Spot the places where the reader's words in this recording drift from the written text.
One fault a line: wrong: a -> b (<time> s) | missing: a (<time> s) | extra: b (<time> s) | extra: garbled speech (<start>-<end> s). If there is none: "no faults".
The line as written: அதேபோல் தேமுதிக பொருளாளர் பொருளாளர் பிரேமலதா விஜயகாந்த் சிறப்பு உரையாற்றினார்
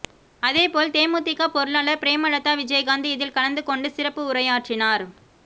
missing: பொருளாளர் (2.0 s)
extra: இதில் கலந்து கொண்டு (3.1 s)